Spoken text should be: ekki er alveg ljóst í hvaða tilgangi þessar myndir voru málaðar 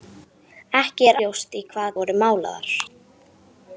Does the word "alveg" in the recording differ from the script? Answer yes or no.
yes